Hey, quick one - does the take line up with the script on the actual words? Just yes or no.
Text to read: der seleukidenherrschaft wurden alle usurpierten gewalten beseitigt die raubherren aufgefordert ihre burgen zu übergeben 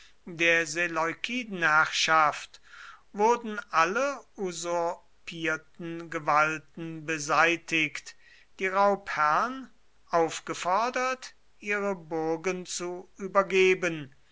yes